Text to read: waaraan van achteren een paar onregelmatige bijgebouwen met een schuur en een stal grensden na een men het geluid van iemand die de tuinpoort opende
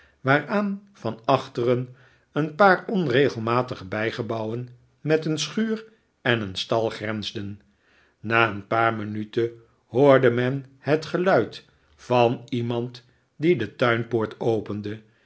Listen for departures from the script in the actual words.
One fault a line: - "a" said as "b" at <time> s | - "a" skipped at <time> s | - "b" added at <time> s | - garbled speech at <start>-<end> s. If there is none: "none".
- "paar minuten hoorde" added at 8.7 s